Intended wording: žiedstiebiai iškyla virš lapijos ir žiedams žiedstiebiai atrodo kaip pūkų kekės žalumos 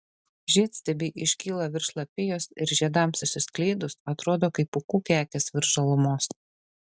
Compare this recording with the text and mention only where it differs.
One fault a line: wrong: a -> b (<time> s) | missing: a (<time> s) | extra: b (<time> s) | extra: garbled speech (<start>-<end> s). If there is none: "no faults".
wrong: žiedstiebiai -> išsiskleidus (3.3 s)
extra: virš (5.6 s)